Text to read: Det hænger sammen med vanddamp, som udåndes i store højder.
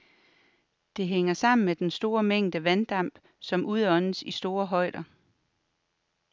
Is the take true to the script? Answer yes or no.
no